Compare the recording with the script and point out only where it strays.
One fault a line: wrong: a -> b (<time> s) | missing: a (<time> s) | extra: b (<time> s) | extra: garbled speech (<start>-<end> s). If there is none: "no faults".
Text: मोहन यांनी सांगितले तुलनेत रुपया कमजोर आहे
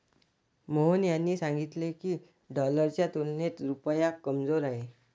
extra: की डॉलरच्या (1.9 s)